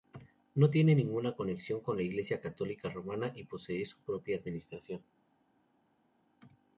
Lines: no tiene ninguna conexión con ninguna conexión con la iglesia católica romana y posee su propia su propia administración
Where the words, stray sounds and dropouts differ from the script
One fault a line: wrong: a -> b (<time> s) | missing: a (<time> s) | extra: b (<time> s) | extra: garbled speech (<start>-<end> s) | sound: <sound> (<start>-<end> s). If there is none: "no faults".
missing: ninguna conexión con (2.0 s)
missing: su propia (4.4 s)